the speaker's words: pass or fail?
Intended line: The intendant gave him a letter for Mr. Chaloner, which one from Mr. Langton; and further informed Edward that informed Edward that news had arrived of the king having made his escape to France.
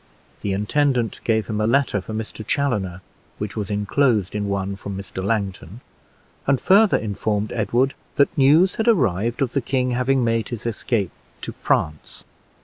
fail